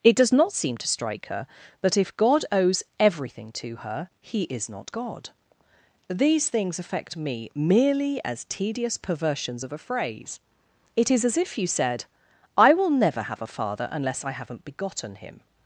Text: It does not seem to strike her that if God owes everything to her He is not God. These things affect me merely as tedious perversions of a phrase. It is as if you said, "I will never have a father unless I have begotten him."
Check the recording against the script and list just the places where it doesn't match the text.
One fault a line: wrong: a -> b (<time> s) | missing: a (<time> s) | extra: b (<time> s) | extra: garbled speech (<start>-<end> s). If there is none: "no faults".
wrong: have -> haven't (14.3 s)